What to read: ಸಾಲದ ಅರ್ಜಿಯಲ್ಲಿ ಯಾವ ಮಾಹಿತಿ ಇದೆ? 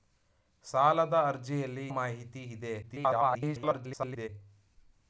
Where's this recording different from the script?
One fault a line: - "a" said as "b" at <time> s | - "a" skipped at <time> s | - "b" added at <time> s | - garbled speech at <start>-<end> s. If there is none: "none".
- "ಯಾವ" skipped at 1.9 s
- garbled speech at 2.8-4.3 s